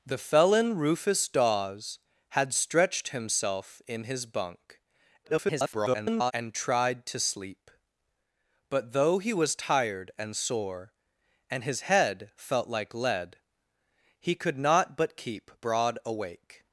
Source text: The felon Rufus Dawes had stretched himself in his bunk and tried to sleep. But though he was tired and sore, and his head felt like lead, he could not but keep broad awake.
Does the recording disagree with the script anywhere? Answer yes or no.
yes